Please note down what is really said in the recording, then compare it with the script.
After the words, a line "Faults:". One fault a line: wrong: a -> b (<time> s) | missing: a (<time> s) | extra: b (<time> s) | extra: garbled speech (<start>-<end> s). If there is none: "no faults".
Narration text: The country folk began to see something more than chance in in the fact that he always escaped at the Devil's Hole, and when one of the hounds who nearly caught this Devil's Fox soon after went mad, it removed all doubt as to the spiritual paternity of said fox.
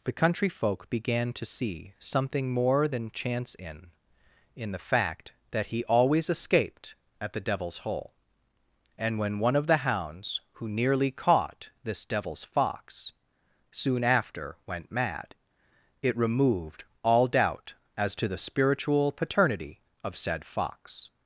The country folk began to see something more than chance in in the fact that he always escaped at the Devil's Hole, and when one of the hounds who nearly caught this Devil's Fox soon after went mad, it removed all doubt as to the spiritual paternity of said fox.
Faults:
no faults